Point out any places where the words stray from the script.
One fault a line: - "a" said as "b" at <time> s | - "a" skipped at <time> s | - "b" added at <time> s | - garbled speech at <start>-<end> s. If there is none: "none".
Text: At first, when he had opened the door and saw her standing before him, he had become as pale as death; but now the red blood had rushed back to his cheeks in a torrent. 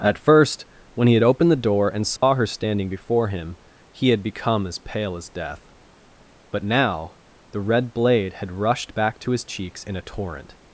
- "blood" said as "blade" at 7.9 s